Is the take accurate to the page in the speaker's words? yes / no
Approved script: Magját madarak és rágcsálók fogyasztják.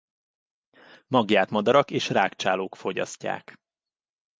yes